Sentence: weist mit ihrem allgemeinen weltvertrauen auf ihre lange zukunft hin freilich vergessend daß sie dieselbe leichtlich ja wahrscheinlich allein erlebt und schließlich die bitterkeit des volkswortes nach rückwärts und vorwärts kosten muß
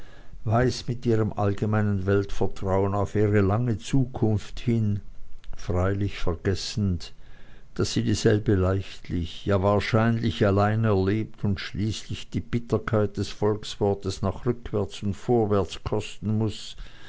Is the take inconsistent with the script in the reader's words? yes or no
no